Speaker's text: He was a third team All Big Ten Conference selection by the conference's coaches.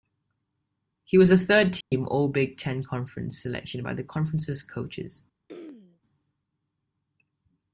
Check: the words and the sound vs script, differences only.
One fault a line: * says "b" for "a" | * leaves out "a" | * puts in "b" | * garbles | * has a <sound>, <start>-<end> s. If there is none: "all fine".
* has a dropout, 1.8-1.9 s
* has a throat clearing, 5.5-6.0 s